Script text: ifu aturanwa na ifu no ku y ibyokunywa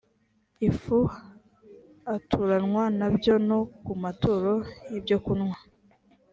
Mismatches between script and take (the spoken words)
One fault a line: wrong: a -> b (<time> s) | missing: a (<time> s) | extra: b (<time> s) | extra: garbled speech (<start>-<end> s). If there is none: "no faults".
wrong: ifu -> byo (3.1 s)
extra: maturo (4.0 s)